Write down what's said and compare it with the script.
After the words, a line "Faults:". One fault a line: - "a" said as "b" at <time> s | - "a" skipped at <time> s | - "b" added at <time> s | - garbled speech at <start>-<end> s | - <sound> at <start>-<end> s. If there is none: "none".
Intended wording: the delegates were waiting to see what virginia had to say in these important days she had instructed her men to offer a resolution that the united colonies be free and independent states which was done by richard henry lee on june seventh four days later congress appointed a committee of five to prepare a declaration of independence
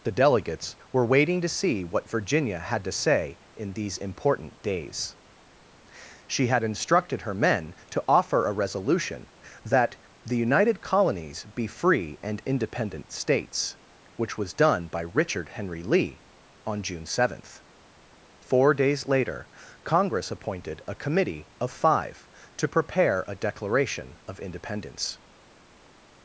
the delegates were waiting to see what virginia had to say in these important days she had instructed her men to offer a resolution that the united colonies be free and independent states which was done by richard henry lee on june seventh four days later congress appointed a committee of five to prepare a declaration of independence
Faults:
none